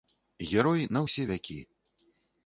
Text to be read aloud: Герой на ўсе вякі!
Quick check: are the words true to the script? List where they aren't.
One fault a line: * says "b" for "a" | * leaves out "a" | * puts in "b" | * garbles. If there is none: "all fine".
all fine